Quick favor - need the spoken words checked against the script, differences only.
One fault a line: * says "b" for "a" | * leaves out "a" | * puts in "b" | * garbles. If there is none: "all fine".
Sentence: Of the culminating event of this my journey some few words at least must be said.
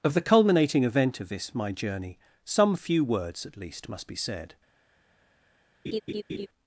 all fine